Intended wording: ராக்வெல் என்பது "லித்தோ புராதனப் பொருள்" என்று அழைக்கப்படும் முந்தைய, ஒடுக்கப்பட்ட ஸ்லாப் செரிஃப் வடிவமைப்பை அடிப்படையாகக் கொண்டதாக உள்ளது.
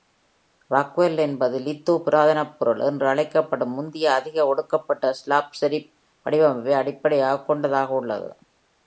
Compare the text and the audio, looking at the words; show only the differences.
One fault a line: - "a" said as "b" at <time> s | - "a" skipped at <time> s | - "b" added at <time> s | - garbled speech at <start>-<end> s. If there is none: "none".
- "அதிக" added at 4.1 s